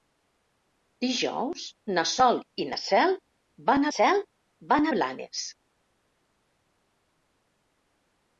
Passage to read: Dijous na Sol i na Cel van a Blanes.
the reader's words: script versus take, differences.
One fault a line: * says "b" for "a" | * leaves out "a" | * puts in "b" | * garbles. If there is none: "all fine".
* puts in "Cel van"